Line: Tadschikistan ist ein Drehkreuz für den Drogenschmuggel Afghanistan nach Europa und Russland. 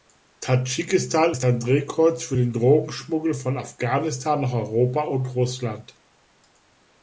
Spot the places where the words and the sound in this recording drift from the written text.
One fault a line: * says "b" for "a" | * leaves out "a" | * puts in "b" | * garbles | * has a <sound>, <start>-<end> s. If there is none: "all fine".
* puts in "von"